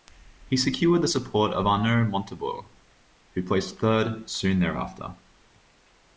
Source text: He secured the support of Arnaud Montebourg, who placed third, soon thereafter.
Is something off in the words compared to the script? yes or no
no